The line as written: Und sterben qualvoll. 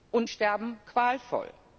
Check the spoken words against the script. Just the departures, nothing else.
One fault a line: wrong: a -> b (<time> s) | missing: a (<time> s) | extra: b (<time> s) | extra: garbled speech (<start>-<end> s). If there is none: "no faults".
no faults